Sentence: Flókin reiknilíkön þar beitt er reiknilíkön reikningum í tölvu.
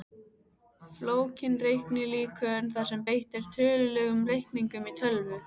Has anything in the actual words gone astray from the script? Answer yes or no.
yes